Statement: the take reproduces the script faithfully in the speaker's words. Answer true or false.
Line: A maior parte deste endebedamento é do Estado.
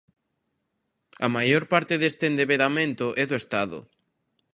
true